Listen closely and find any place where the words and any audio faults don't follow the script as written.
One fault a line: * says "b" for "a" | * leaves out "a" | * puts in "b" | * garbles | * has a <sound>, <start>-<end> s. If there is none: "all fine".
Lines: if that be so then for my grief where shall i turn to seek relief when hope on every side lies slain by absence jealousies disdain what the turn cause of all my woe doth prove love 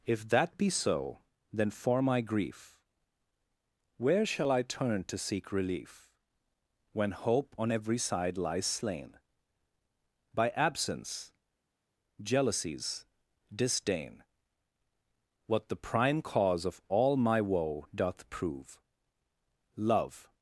* says "prime" for "turn"